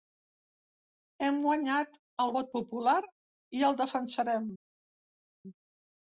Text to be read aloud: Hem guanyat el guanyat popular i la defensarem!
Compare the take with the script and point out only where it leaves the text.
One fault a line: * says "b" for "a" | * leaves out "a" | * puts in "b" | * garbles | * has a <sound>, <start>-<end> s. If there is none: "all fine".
* says "vot" for "guanyat"
* says "el" for "la"